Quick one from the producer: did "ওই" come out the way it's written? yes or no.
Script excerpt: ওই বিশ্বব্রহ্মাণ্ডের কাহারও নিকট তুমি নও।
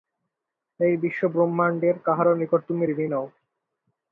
no